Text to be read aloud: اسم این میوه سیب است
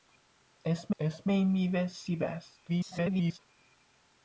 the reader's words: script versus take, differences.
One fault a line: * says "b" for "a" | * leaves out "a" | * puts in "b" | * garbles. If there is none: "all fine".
* puts in "اسم"
* garbles